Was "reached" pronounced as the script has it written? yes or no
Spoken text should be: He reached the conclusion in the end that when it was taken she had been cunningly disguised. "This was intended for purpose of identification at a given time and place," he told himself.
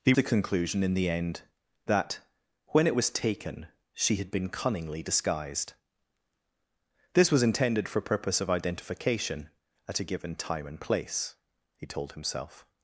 no